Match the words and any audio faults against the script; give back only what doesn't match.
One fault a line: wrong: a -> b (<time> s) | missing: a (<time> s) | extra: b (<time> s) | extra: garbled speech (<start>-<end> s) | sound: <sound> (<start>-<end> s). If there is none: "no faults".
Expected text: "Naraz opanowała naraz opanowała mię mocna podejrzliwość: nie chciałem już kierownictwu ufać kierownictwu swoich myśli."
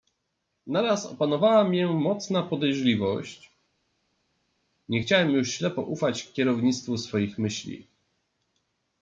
missing: naraz opanowała (1.6 s)
wrong: kierownictwu -> ślepo (5.5 s)